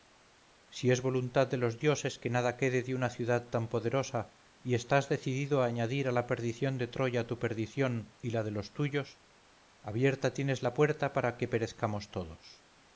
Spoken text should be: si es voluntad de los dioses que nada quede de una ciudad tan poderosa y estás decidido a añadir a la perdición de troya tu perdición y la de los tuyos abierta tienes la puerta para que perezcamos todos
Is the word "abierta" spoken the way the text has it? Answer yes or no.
yes